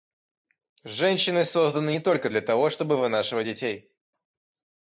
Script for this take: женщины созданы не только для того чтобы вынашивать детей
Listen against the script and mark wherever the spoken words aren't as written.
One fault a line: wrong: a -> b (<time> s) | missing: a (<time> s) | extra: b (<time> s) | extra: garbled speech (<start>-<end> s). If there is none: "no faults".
no faults